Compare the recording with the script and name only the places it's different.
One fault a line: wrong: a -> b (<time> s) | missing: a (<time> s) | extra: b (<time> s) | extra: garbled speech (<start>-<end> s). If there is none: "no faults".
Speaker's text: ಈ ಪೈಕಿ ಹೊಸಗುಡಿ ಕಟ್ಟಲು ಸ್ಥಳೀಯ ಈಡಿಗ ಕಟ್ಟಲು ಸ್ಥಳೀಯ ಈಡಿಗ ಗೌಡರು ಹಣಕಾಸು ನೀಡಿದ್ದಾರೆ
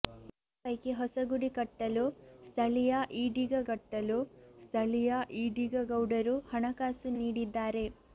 no faults